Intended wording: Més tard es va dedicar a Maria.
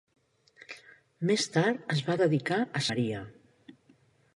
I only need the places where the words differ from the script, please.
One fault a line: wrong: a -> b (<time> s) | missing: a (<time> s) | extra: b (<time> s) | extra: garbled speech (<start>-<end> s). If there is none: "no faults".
no faults